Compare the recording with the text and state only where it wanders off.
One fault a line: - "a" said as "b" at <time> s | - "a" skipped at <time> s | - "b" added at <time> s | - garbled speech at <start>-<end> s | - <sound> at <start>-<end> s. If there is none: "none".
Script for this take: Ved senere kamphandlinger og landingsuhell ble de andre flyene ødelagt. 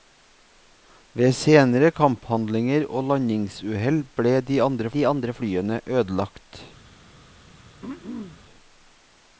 - "de andre" added at 4.9 s
- throat clearing at 7.8-8.4 s